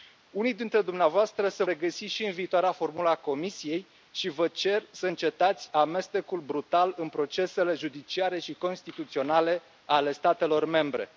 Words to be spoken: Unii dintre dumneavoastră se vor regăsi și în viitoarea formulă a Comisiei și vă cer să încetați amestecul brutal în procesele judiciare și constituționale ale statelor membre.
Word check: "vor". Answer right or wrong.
wrong